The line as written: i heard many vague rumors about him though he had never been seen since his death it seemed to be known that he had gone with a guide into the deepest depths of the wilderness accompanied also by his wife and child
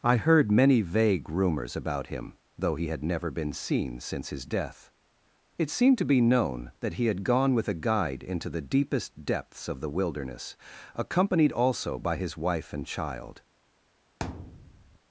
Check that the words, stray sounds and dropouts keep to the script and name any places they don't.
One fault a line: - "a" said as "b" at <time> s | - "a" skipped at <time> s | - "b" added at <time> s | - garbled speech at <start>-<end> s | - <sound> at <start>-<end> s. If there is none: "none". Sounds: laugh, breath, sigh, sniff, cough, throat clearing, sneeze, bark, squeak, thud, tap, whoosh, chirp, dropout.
- thud at 14.2-15.0 s